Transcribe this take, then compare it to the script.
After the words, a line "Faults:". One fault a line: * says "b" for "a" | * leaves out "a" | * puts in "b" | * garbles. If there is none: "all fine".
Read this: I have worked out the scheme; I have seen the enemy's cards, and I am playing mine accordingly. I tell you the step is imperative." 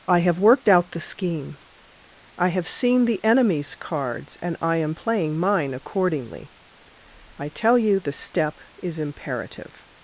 I have worked out the scheme; I have seen the enemy's cards, and I am playing mine accordingly. I tell you the step is imperative."
Faults:
all fine